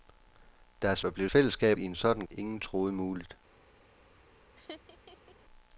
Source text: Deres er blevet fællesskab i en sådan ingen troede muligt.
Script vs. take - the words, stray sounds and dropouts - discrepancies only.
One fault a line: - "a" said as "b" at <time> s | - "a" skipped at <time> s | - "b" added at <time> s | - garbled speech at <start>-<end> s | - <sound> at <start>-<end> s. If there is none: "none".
- laugh at 4.6-5.4 s